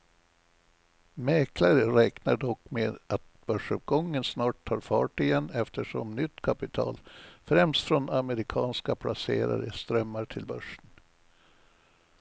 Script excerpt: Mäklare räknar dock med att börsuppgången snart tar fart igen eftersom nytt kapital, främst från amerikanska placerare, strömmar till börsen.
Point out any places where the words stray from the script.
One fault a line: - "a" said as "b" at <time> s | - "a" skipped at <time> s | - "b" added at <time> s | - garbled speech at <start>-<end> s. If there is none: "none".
none